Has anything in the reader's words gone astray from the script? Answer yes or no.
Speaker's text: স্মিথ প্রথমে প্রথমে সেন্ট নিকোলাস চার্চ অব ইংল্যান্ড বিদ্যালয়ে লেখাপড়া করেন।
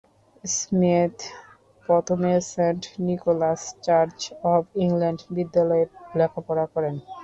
yes